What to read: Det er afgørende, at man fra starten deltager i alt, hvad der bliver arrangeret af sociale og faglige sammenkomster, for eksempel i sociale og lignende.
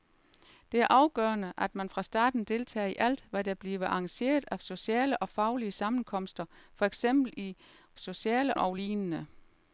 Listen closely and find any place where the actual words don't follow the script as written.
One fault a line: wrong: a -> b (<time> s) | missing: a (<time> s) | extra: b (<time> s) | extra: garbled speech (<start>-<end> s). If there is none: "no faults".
no faults